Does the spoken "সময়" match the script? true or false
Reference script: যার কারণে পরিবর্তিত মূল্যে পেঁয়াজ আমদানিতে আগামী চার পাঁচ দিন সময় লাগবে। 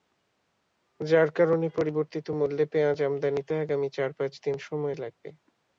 true